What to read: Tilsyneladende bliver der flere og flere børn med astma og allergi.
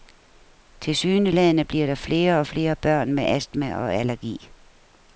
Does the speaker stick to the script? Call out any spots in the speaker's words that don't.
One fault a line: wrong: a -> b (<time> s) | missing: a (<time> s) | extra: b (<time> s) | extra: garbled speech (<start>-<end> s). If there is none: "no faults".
no faults